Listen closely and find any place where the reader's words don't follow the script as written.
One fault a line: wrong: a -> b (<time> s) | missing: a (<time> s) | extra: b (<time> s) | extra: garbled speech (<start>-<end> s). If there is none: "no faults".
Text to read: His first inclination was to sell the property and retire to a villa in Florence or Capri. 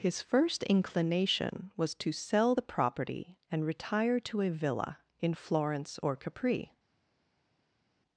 no faults